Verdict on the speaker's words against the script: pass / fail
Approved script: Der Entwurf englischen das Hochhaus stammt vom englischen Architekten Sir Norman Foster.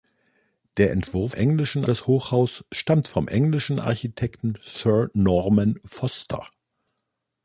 pass